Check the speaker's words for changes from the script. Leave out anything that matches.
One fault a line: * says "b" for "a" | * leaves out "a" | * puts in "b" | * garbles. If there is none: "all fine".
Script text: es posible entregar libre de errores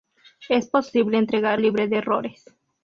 all fine